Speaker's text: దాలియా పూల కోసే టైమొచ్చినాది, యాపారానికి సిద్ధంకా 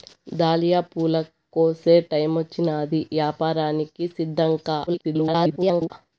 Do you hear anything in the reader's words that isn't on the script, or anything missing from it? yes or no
yes